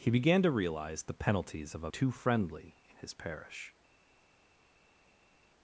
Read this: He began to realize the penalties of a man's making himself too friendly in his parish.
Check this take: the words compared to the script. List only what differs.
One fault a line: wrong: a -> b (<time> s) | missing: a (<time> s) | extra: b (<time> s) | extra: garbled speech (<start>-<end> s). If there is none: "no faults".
missing: man's making himself (1.9 s)